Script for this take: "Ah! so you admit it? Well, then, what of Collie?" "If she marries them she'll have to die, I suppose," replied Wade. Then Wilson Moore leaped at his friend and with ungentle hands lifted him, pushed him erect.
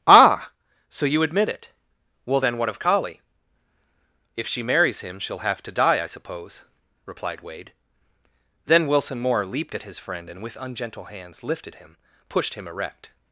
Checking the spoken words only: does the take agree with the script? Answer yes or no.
no